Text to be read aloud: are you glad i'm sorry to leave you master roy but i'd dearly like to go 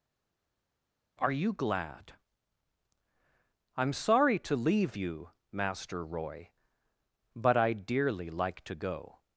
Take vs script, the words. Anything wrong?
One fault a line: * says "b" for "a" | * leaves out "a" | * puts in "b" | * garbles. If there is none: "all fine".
all fine